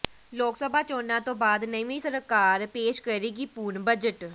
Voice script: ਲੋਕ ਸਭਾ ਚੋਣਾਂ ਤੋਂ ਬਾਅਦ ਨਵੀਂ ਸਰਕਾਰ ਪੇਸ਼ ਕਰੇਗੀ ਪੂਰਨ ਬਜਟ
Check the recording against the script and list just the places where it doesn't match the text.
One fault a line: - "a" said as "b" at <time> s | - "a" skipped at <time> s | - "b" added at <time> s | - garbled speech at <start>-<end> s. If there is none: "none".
none